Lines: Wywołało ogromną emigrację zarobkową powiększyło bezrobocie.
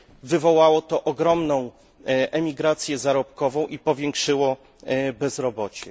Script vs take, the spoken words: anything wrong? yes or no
yes